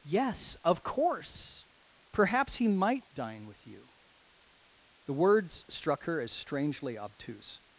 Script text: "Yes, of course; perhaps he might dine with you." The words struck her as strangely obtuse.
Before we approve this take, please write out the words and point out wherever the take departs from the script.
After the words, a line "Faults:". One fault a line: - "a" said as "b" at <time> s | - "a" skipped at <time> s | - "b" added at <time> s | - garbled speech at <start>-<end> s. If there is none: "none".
"Yes, of course; perhaps he might dine with you." The words struck her as strangely obtuse.
Faults:
none